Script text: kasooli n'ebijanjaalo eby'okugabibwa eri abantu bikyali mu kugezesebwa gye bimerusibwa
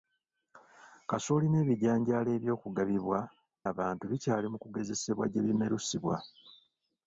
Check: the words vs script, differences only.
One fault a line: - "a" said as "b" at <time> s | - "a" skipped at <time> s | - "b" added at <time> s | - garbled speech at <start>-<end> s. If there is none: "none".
- "eri" skipped at 3.2 s